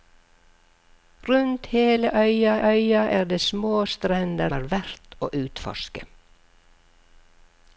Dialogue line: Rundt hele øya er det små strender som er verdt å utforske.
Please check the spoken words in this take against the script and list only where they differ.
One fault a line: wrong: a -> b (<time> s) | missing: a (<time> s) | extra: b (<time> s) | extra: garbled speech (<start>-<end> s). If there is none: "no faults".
extra: øya (2.7 s)
missing: som (4.5 s)